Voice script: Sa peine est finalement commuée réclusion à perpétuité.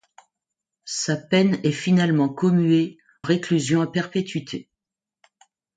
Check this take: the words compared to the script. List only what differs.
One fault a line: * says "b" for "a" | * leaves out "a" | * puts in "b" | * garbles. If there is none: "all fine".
all fine